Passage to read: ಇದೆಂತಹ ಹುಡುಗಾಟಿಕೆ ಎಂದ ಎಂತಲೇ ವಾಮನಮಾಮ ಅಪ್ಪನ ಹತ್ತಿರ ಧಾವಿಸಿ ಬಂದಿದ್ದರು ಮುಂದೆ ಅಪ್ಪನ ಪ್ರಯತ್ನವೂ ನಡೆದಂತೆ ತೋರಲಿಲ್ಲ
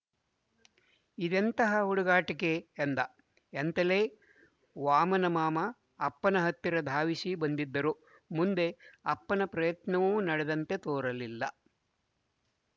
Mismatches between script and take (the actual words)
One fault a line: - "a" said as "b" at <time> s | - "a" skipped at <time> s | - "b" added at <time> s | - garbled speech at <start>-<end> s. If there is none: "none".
none